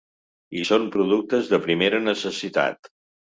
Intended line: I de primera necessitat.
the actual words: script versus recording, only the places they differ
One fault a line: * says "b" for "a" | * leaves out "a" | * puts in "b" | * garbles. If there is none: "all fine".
* puts in "són productes"